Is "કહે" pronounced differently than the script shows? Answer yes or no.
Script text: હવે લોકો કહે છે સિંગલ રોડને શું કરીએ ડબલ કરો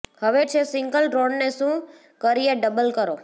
yes